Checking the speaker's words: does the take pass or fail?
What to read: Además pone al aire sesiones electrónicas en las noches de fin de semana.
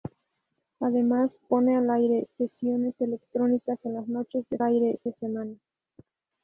fail